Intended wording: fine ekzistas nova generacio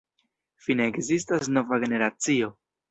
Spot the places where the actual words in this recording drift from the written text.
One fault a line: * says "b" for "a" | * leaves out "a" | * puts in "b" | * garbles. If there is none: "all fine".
all fine